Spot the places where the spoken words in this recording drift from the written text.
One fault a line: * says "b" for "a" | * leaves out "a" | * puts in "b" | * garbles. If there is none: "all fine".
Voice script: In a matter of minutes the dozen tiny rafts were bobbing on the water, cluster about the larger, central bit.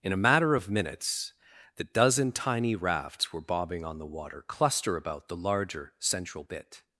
all fine